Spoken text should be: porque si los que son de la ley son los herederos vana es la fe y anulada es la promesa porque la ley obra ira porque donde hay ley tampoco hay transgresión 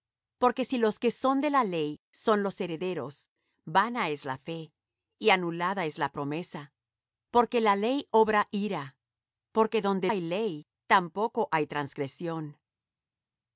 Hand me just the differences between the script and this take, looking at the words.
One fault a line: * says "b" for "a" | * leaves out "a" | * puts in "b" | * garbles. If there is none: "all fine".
all fine